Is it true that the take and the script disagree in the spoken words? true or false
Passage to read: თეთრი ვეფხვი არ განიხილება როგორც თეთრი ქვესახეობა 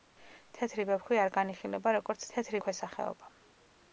false